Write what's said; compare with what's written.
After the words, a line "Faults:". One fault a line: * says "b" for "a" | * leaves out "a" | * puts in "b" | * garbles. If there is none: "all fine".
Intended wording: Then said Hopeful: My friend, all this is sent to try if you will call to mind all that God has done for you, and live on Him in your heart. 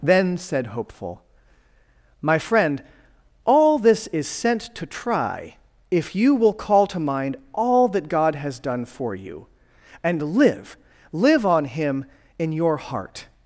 Then said Hopeful: My friend, all this is sent to try if you will call to mind all that God has done for you, and live live on Him in your heart.
Faults:
* puts in "live"